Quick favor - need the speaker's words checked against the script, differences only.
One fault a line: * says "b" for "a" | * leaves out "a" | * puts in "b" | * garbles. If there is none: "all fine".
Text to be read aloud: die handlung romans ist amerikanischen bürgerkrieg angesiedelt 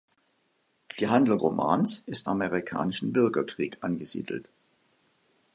all fine